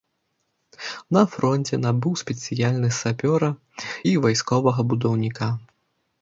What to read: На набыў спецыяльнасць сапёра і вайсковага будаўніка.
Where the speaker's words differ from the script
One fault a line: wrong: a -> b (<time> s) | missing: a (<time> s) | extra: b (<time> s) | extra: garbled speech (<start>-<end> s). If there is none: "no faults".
extra: фронце (1.3 s)